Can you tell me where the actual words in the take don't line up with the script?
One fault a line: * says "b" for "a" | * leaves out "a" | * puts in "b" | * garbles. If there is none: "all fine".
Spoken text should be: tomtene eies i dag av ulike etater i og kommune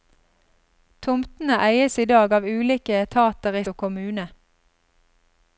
all fine